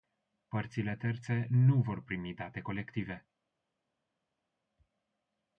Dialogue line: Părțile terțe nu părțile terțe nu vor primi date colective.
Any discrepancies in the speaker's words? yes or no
yes